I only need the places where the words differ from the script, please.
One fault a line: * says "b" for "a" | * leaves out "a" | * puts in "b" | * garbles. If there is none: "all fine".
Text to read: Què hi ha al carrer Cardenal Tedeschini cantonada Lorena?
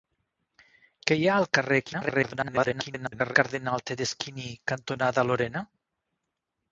* garbles